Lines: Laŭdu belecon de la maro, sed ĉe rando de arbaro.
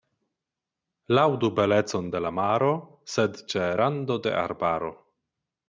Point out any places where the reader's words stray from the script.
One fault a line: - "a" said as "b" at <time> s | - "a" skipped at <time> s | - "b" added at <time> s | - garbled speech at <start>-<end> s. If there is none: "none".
none